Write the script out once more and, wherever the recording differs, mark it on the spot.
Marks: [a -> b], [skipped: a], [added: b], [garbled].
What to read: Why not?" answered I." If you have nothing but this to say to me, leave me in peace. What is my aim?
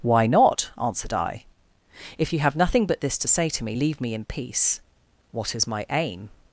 Why not?" answered I." If you have nothing but this to say to me, leave me in peace. What is my aim?